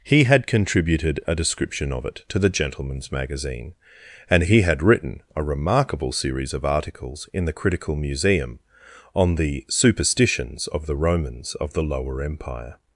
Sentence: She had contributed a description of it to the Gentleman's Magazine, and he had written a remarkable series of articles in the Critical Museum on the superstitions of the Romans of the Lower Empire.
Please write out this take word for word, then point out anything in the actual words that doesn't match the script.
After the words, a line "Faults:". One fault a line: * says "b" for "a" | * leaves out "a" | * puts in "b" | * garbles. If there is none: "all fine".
He had contributed a description of it to the Gentleman's Magazine, and he had written a remarkable series of articles in the Critical Museum on the superstitions of the Romans of the Lower Empire.
Faults:
* says "He" for "She"